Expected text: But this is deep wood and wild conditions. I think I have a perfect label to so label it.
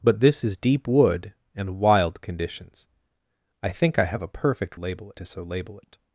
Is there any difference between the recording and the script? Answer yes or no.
no